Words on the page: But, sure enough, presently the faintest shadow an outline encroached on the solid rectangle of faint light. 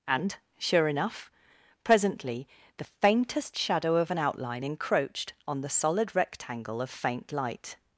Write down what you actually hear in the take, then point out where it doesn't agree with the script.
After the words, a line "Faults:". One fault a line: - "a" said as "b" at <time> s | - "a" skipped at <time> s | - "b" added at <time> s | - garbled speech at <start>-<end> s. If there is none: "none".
And, sure enough, presently the faintest shadow of an outline encroached on the solid rectangle of faint light.
Faults:
- "But" said as "And" at 0.1 s
- "of" added at 4.0 s